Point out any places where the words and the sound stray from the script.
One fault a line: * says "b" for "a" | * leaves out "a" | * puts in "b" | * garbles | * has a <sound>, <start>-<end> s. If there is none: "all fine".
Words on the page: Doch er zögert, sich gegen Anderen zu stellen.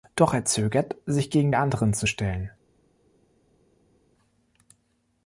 all fine